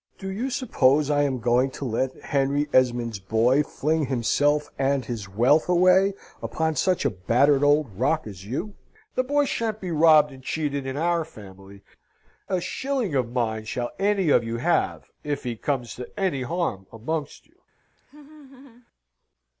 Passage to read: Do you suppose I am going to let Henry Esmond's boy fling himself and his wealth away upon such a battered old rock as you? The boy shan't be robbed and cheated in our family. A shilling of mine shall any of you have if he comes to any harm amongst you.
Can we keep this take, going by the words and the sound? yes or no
no